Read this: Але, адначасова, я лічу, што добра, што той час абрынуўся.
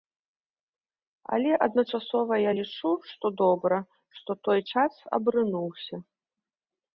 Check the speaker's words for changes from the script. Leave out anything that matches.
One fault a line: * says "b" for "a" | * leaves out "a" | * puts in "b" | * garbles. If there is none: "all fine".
all fine